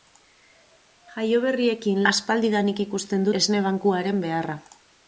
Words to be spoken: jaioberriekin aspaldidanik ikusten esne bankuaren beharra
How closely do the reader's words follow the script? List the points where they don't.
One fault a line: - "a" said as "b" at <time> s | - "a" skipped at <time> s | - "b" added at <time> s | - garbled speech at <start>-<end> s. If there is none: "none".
none